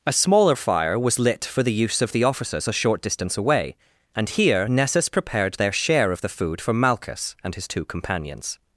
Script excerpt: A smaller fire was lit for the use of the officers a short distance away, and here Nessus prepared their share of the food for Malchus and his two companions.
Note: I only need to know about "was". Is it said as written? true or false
true